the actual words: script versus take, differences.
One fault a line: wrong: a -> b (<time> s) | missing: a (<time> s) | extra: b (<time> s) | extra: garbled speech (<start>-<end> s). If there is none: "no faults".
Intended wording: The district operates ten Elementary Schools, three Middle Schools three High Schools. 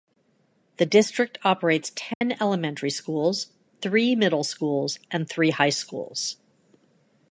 extra: and (5.1 s)